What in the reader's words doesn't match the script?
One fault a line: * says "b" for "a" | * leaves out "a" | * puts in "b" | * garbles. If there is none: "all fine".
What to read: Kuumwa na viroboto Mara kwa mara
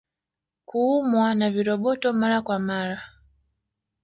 all fine